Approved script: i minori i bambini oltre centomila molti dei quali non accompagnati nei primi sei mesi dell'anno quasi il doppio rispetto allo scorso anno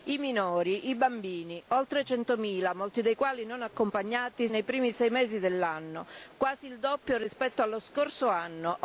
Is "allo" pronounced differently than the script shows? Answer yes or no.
no